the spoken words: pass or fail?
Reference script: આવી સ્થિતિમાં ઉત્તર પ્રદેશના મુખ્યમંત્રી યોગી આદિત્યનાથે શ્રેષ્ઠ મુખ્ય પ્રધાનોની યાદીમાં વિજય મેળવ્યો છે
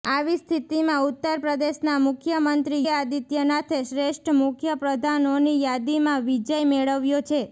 fail